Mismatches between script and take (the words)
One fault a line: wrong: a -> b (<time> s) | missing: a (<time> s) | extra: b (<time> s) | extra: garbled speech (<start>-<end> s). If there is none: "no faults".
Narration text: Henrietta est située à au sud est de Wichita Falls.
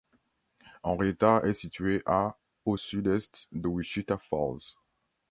no faults